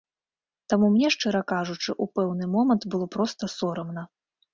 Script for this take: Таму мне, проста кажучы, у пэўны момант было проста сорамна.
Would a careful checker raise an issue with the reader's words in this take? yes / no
yes